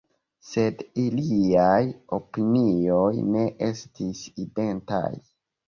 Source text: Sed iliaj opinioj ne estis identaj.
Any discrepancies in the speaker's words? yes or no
no